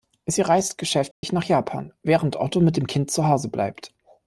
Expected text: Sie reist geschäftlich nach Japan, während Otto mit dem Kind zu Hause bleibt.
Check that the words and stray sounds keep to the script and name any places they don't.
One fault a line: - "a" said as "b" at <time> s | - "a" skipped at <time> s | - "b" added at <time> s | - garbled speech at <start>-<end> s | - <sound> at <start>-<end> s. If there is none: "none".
- dropout at 1.1-1.2 s